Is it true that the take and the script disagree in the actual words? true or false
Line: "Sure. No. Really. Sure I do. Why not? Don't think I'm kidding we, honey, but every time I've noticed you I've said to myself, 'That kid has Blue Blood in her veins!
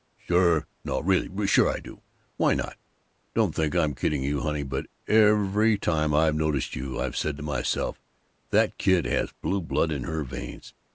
true